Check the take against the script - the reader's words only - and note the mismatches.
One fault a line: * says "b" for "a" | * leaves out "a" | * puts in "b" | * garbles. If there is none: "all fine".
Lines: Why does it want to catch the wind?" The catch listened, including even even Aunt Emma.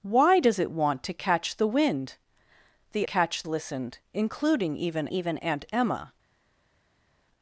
all fine